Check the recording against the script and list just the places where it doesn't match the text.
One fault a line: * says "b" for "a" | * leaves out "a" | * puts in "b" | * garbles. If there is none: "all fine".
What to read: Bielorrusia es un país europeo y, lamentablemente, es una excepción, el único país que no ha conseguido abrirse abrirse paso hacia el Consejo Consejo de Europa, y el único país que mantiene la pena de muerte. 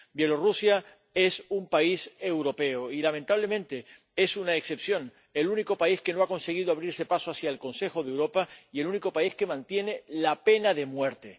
* leaves out "abrirse"
* leaves out "Consejo"